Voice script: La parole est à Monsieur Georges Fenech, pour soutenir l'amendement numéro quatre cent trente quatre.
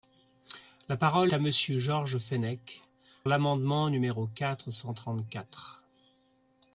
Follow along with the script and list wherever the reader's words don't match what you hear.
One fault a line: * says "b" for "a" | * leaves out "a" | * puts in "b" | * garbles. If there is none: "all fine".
* leaves out "est"
* leaves out "pour soutenir"